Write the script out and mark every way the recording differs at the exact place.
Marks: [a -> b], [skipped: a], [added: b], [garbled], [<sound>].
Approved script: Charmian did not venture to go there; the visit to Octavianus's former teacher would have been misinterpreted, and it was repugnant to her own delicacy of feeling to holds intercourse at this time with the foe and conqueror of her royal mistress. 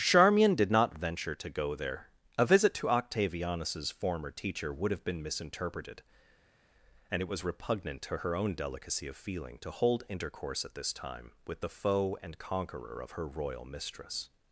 Charmian did not venture to go there; [the -> a] visit to Octavianus's former teacher would have been misinterpreted, and it was repugnant to her own delicacy of feeling to [holds -> hold] intercourse at this time with the foe and conqueror of her royal mistress.